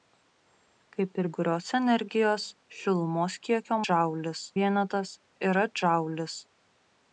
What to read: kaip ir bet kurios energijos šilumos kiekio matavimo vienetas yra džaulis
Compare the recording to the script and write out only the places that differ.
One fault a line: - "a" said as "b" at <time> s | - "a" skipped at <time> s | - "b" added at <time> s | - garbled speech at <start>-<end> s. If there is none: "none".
- "bet" skipped at 1.3 s
- "matavimo" said as "džaulis" at 3.8 s